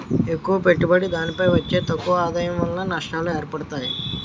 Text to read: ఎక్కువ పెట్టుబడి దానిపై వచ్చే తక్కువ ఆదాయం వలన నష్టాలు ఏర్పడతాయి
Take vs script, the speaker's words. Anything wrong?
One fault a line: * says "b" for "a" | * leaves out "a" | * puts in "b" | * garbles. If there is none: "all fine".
all fine